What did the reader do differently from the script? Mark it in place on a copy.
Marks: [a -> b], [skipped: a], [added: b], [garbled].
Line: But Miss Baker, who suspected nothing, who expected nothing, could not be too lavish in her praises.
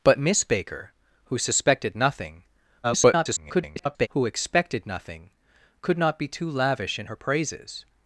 But Miss Baker, who suspected nothing, [garbled] who expected nothing, could not be too lavish in her praises.